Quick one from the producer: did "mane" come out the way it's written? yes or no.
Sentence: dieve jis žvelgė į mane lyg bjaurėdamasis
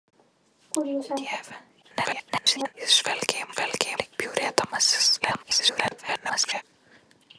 no